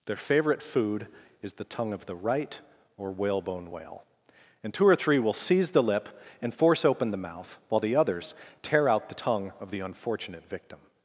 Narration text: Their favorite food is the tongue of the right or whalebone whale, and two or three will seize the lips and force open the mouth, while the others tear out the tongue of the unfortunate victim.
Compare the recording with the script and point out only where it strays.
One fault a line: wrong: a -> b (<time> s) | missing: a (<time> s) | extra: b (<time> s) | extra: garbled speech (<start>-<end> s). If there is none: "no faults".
wrong: lips -> lip (5.8 s)